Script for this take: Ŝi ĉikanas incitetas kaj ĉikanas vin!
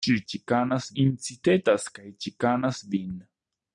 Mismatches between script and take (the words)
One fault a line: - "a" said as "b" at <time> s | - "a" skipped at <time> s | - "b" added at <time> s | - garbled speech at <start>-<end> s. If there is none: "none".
none